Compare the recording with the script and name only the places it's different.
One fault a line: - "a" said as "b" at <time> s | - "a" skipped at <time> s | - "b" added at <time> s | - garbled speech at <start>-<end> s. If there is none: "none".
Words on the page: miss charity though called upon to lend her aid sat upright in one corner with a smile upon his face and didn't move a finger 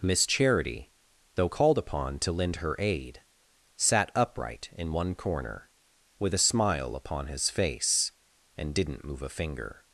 none